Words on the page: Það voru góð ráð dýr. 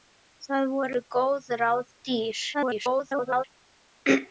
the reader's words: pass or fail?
fail